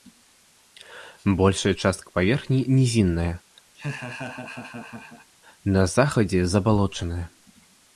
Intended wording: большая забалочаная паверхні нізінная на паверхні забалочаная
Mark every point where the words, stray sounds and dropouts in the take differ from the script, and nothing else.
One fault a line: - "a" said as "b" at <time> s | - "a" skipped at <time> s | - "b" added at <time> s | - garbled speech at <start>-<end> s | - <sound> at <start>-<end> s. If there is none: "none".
- "забалочаная" said as "частка" at 1.7 s
- laugh at 3.7-5.3 s
- "паверхні" said as "захадзе" at 5.9 s